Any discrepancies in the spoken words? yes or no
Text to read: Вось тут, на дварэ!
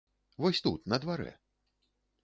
no